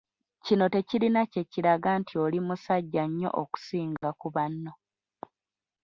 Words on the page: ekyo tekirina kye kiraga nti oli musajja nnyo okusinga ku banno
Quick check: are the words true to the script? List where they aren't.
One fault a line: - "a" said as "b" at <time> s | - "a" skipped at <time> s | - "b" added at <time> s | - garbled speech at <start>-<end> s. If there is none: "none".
- "ekyo" said as "kino" at 0.5 s